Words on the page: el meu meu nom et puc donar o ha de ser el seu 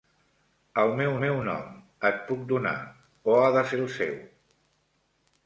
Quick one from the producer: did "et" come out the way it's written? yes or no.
yes